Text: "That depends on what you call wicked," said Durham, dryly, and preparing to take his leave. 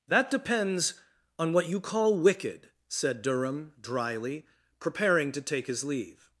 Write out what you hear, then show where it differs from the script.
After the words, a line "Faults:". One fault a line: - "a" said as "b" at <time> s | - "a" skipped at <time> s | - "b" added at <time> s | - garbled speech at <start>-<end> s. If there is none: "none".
"That depends on what you call wicked," said Durham, dryly, preparing to take his leave.
Faults:
- "and" skipped at 4.5 s